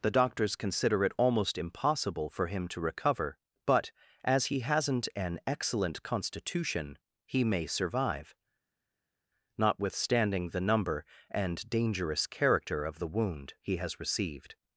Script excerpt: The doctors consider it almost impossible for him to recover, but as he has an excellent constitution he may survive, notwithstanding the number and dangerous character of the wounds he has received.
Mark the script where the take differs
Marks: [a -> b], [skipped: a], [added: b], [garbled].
The doctors consider it almost impossible for him to recover, but as he [has -> hasn't] an excellent constitution he may survive, notwithstanding the number and dangerous character of the [wounds -> wound] he has received.